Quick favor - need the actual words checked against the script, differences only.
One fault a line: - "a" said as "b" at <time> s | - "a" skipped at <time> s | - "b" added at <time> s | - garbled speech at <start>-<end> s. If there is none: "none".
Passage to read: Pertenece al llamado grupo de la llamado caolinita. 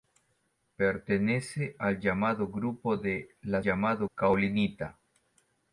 none